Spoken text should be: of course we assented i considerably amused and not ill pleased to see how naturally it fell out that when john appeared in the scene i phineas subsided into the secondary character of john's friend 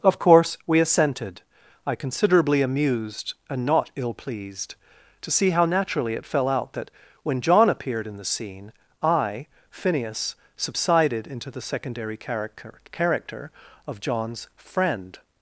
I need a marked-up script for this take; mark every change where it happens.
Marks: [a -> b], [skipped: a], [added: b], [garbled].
of course we assented i considerably amused and not ill pleased to see how naturally it fell out that when john appeared in the scene i phineas subsided into the secondary character [added: character] of john's friend